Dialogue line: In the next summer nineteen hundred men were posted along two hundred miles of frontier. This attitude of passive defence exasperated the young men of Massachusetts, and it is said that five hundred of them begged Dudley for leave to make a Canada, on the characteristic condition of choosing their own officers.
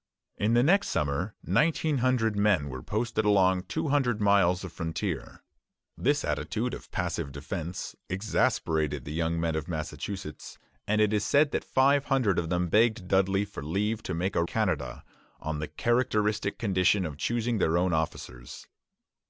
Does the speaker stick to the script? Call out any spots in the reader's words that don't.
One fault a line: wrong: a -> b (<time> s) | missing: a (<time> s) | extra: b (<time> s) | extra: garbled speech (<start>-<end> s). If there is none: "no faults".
no faults